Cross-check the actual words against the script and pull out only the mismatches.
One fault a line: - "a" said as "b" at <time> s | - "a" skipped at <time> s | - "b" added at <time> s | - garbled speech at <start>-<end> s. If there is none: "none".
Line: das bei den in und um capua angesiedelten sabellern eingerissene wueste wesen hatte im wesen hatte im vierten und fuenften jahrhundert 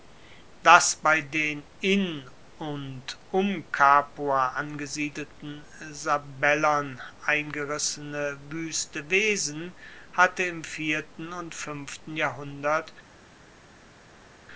- "wesen hatte im" skipped at 10.6 s